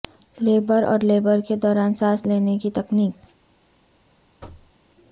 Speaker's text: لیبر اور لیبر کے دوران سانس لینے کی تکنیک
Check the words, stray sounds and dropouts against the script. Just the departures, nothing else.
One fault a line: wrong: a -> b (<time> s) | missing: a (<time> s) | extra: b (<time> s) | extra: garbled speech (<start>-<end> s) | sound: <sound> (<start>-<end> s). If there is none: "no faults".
sound: thud (4.4-4.7 s)